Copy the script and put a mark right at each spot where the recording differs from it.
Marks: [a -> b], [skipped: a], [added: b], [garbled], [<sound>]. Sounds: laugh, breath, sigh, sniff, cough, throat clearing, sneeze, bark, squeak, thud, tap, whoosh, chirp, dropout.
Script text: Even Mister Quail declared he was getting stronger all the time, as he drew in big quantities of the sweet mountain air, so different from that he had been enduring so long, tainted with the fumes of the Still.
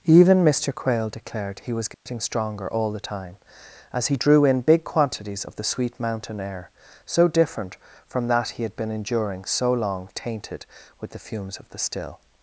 Even Mister Quail declared he was getting [dropout] stronger all the time, as he drew in big quantities of the sweet mountain air, so different from that he had been enduring so long, tainted with the fumes of the Still.